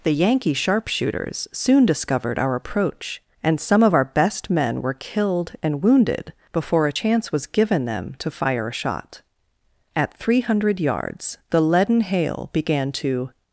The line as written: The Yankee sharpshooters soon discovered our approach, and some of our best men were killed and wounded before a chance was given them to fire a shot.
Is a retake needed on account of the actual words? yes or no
yes